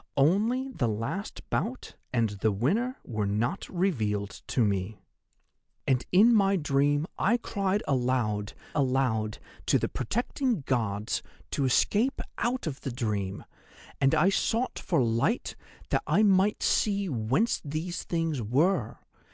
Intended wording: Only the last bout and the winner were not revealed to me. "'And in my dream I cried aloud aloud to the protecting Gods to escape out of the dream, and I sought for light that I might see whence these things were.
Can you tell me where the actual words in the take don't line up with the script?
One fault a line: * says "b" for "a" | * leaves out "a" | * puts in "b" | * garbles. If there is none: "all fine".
all fine